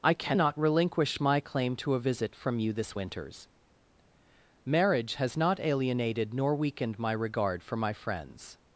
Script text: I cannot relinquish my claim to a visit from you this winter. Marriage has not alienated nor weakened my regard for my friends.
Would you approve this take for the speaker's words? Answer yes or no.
no